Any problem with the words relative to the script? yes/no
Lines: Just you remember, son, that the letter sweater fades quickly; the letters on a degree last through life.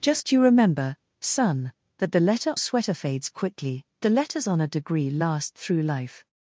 no